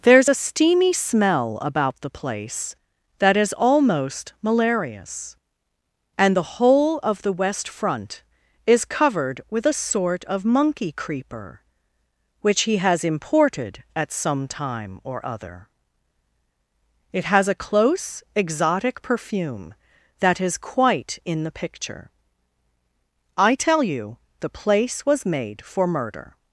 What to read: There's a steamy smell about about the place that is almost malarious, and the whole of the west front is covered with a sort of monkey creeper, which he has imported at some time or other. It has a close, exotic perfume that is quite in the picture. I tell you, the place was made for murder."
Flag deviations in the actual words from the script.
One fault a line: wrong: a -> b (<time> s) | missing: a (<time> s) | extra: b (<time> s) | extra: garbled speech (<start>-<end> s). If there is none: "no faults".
missing: about (2.0 s)